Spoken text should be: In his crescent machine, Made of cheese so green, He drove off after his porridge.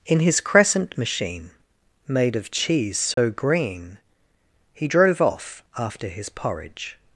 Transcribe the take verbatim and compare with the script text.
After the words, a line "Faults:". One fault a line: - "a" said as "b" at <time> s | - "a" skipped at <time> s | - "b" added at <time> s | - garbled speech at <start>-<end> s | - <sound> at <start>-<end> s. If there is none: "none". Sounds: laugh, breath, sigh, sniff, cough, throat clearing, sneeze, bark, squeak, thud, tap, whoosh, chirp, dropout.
In his crescent machine, Made of cheese so green, He drove off after his porridge.
Faults:
- dropout at 3.1-3.2 s